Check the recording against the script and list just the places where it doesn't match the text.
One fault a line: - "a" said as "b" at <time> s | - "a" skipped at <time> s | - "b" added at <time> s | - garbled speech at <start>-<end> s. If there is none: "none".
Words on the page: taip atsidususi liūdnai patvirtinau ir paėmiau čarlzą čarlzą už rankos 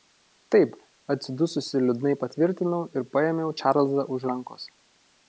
- "čarlzą" skipped at 4.1 s